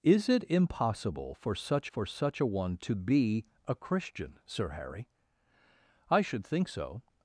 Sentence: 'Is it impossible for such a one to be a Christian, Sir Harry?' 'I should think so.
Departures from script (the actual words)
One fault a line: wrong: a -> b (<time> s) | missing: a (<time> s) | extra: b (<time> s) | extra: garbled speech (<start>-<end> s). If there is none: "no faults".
extra: for such (1.9 s)